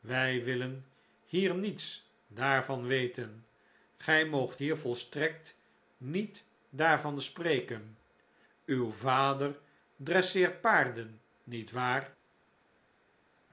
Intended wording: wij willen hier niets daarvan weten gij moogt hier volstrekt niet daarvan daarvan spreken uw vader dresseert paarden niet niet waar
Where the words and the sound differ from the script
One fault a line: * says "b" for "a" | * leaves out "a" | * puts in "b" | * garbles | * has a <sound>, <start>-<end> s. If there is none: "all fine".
* leaves out "daarvan"
* leaves out "niet"